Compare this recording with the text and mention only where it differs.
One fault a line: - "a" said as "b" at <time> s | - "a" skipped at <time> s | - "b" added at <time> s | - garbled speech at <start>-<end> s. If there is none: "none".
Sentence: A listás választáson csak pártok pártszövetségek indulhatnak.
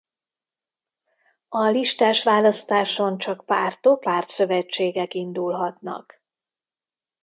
none